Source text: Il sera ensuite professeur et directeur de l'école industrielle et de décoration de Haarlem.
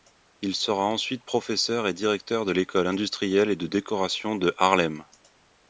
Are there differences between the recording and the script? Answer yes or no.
no